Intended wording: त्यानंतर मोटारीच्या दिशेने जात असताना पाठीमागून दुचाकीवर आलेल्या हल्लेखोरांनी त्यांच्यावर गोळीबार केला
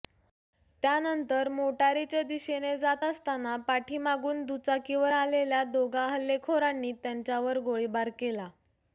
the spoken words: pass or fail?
fail